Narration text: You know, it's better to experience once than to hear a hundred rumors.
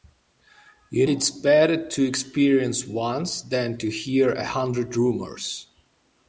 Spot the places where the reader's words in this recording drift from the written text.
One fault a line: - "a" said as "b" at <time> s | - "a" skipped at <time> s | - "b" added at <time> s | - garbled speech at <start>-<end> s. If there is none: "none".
- "know" skipped at 1.1 s